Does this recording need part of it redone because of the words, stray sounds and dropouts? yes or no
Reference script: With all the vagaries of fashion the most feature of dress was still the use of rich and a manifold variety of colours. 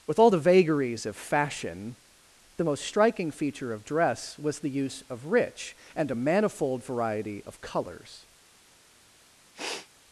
yes